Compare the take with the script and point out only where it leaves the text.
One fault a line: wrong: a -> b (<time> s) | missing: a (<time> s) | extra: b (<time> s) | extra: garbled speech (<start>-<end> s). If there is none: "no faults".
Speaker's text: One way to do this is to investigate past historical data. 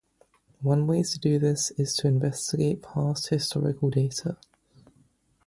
no faults